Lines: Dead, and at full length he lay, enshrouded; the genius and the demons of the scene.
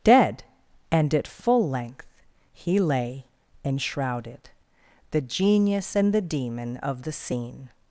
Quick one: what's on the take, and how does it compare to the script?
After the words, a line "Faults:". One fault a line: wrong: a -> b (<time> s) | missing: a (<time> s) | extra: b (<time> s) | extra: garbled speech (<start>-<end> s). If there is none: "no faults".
Dead, and at full length he lay, enshrouded; the genius and the demon of the scene.
Faults:
wrong: demons -> demon (6.2 s)